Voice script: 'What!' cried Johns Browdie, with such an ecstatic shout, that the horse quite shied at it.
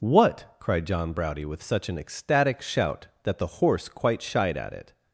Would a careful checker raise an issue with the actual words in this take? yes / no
yes